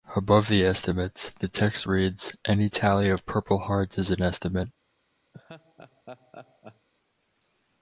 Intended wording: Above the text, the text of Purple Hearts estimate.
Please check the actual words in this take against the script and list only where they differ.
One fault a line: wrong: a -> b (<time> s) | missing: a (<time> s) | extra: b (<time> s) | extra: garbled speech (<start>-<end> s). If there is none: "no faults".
wrong: text -> estimates (0.7 s)
extra: reads Any tally (1.9 s)
extra: is an (4.0 s)